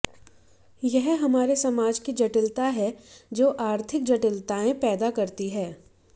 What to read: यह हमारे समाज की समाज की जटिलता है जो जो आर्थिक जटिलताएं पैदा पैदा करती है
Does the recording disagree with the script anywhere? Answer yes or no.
yes